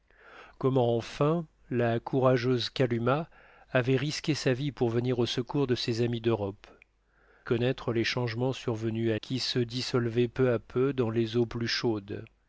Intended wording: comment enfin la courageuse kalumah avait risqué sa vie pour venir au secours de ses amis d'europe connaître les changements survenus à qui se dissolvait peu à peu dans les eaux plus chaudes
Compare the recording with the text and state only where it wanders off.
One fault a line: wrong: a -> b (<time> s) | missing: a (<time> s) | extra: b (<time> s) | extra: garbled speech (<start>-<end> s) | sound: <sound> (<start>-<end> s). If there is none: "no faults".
no faults